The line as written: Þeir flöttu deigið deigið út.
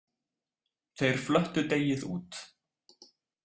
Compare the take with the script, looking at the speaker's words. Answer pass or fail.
fail